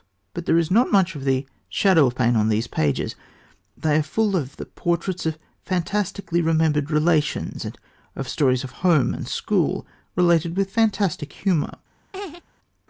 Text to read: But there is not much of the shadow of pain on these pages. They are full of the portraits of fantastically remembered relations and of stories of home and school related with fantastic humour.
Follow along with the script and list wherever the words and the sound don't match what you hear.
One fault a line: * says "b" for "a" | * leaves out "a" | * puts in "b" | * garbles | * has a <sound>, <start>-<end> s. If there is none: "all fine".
* has a laugh, 12.1-12.4 s